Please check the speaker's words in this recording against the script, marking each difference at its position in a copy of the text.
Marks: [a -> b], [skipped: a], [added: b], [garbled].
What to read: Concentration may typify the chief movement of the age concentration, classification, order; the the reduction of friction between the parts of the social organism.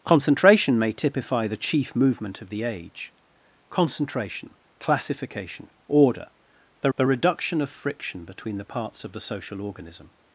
Concentration may typify the chief movement of the age concentration, classification, order; the the reduction of friction between the parts of the social organism.